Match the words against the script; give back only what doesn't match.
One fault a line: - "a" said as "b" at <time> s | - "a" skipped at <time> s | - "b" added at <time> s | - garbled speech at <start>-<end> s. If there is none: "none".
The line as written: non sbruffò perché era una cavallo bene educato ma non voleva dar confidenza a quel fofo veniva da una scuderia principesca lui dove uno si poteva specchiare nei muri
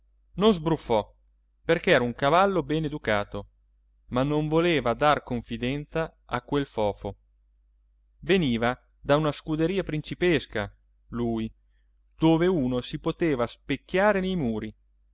- "una" said as "un" at 2.0 s